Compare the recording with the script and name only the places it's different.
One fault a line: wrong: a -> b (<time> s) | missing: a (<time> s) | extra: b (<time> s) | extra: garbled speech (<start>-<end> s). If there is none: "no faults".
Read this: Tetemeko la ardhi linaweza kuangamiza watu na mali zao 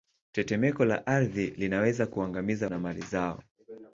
missing: watu (2.7 s)